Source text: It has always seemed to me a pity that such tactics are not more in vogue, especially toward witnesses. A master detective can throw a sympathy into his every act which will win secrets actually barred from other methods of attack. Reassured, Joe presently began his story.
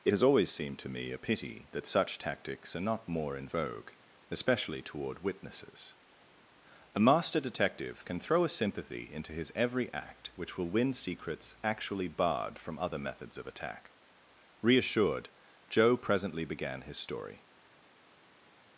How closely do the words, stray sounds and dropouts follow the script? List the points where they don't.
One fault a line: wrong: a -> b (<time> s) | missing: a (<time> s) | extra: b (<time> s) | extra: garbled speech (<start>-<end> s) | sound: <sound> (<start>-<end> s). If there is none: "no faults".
no faults